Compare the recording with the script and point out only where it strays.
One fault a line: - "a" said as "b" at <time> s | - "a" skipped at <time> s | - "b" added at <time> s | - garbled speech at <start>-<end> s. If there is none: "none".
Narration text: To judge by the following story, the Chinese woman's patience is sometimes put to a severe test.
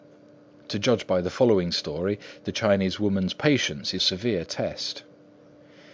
- "sometimes put to" skipped at 4.0 s